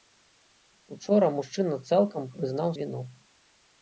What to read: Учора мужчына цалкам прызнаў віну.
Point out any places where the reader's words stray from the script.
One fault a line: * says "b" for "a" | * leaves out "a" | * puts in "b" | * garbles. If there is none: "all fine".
all fine